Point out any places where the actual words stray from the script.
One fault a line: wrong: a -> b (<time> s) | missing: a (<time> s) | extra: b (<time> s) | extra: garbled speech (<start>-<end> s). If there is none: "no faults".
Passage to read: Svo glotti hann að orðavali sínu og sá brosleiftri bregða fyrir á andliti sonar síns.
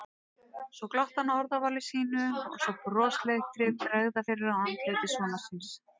no faults